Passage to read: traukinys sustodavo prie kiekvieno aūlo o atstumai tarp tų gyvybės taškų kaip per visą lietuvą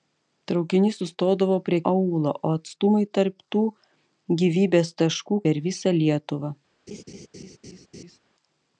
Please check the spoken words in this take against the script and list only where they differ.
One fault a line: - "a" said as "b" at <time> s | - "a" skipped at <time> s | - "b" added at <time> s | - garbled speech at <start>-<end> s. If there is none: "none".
- "kiekvieno" skipped at 1.8 s
- "kaip" skipped at 5.4 s